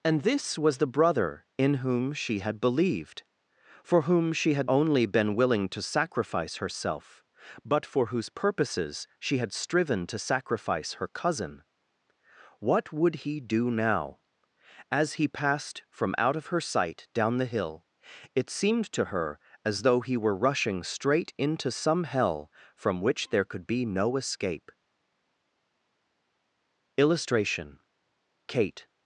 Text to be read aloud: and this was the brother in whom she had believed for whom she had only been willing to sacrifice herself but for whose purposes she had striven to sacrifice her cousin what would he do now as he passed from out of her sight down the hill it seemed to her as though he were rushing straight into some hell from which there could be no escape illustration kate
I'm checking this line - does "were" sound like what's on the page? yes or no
yes